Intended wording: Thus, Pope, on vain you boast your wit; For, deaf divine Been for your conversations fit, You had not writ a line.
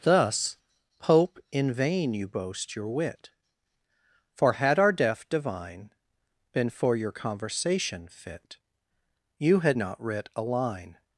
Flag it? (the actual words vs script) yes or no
yes